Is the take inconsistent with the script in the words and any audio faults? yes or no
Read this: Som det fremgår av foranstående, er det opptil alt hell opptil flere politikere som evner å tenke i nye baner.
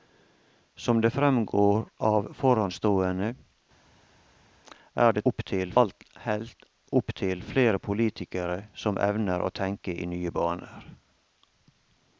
no